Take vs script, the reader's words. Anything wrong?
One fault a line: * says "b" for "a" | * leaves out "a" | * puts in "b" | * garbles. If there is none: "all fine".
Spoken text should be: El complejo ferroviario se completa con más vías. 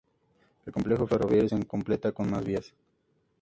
all fine